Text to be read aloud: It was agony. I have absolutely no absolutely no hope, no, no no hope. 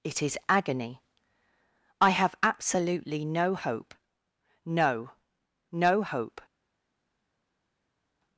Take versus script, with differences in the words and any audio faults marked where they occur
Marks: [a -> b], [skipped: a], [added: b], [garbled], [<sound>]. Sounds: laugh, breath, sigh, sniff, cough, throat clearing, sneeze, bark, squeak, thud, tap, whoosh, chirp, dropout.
It [was -> is] agony. I have absolutely no [skipped: absolutely no] hope, no, no [skipped: no] hope.